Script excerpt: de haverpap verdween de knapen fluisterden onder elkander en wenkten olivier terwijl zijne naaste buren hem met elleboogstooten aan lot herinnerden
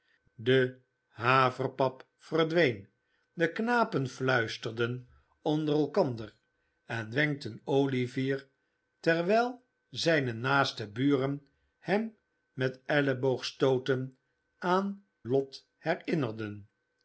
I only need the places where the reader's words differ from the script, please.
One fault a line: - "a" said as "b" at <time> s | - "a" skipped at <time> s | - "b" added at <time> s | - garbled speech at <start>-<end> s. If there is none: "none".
none